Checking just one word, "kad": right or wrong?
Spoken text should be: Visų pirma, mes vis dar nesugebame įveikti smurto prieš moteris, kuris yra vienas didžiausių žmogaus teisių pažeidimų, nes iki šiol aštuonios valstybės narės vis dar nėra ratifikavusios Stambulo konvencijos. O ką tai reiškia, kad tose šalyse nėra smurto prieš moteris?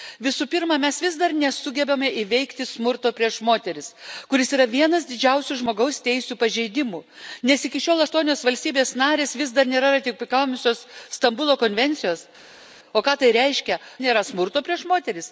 wrong